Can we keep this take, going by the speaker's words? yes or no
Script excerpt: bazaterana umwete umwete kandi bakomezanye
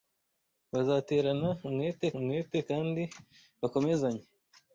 yes